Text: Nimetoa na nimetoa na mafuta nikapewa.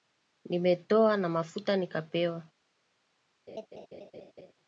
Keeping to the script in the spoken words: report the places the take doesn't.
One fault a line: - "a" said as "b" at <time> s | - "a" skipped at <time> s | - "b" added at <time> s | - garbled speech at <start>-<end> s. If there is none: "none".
- "nimetoa na" skipped at 1.3 s